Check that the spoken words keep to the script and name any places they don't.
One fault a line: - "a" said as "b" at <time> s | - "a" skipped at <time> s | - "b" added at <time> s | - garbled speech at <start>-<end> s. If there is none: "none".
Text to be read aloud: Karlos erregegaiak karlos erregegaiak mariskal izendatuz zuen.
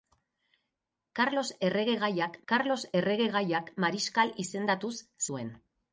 none